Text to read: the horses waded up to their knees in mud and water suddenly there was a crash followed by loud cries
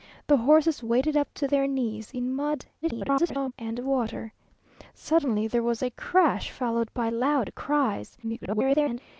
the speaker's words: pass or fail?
fail